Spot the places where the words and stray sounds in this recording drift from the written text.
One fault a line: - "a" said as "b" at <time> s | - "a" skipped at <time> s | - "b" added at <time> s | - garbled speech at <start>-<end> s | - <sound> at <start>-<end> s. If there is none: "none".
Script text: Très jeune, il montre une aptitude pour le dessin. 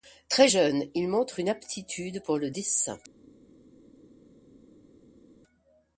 none